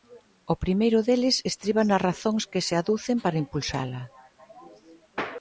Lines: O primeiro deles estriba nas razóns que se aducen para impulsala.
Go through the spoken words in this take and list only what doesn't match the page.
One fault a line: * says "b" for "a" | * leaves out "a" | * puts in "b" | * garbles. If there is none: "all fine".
all fine